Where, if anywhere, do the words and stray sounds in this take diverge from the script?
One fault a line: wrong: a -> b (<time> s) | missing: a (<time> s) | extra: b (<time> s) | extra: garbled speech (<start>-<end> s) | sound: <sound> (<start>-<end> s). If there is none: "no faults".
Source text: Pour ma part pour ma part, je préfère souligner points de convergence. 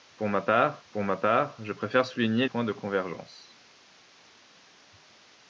no faults